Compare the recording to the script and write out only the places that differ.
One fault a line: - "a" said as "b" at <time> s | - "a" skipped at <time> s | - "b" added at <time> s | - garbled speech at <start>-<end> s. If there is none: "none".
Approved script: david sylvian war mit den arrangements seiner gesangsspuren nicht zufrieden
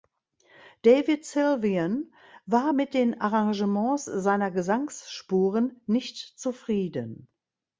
none